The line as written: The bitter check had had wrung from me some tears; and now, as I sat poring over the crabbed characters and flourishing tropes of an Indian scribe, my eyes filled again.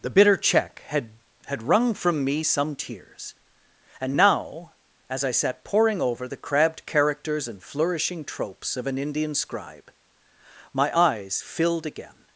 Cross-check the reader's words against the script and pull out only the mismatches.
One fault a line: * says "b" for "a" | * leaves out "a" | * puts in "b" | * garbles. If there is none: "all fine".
all fine